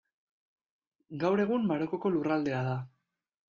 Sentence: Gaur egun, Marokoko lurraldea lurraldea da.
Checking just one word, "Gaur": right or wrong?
right